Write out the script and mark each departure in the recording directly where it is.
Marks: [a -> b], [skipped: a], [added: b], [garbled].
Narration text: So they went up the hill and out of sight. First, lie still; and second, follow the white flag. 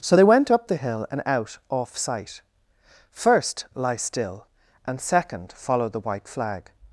So they went up the hill and out [of -> off] sight. First, lie still; and second, follow the white flag.